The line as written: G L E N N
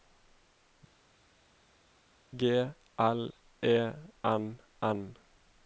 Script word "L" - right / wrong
right